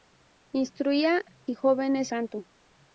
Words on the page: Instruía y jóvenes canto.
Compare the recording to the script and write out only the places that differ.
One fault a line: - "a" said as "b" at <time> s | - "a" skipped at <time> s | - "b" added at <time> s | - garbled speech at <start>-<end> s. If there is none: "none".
none